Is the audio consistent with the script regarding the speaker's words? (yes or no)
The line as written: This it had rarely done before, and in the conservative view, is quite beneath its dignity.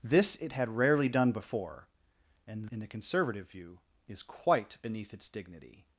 yes